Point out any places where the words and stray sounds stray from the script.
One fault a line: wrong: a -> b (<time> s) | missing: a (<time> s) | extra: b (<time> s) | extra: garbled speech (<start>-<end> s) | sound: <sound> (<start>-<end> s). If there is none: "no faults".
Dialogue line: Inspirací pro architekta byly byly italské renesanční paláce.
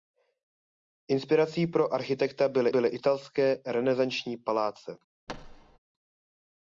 sound: thud (5.3-5.8 s)